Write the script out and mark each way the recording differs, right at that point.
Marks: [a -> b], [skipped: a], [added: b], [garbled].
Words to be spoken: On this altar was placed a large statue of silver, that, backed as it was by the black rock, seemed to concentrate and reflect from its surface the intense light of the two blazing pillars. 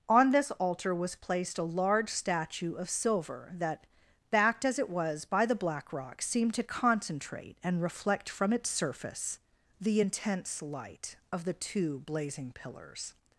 On this altar was placed a large statue of silver, that, backed as it was by the black rock, seemed to concentrate and reflect from its surface the intense light of the two blazing pillars.